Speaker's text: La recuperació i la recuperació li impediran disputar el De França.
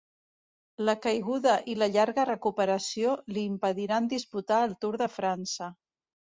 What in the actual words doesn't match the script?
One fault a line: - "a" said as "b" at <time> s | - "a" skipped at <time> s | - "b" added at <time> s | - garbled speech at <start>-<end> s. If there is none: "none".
- "recuperació" said as "caiguda" at 1.0 s
- "llarga" added at 2.0 s
- "Tour" added at 4.8 s